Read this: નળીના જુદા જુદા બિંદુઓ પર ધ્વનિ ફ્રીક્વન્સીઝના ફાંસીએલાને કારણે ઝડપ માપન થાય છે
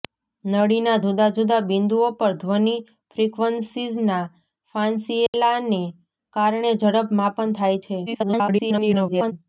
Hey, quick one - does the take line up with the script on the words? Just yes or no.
no